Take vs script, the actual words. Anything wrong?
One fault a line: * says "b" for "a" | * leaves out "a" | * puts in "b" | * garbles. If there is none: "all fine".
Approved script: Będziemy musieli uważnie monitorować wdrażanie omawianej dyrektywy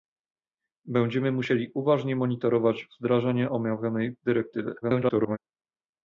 * garbles